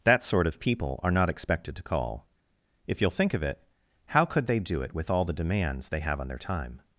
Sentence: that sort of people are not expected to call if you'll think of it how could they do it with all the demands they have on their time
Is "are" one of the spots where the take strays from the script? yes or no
no